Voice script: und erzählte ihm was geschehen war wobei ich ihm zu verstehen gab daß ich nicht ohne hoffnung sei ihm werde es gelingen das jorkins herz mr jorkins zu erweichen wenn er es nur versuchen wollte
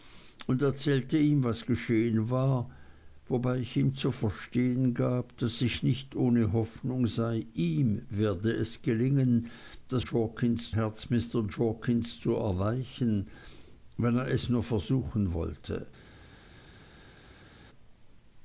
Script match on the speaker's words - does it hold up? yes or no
yes